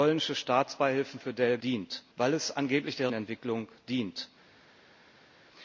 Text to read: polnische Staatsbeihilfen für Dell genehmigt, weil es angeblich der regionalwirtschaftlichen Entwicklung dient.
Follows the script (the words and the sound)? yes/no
no